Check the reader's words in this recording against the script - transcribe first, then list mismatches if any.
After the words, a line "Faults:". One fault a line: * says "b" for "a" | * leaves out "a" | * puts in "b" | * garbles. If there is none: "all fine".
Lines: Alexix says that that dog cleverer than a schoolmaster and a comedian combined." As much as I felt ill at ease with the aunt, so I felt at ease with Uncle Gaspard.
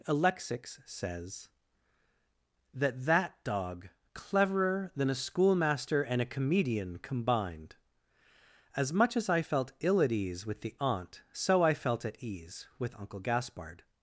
Alexix says that that dog cleverer than a schoolmaster and a comedian combined." As much as I felt ill at ease with the aunt, so I felt at ease with Uncle Gaspard.
Faults:
all fine